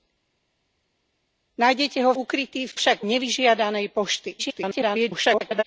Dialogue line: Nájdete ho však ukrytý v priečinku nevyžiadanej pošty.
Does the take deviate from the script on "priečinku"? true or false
true